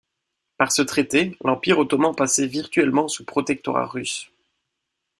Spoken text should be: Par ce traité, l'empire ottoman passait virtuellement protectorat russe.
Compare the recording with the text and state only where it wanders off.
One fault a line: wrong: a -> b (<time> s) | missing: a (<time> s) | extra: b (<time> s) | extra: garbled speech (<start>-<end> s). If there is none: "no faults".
extra: sous (3.1 s)